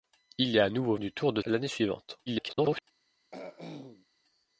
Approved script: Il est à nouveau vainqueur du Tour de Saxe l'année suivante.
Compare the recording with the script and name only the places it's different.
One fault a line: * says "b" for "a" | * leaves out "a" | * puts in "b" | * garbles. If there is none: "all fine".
* leaves out "vainqueur"
* leaves out "Saxe"
* garbles